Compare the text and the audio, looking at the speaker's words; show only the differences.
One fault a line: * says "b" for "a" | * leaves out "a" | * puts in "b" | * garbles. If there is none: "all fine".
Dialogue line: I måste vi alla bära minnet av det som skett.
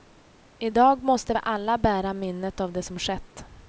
* puts in "dag"